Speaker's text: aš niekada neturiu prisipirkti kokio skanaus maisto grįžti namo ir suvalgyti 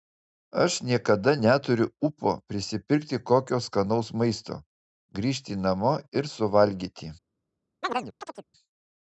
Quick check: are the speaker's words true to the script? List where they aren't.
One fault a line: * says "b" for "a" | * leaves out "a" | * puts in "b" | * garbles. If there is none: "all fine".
* puts in "ūpo"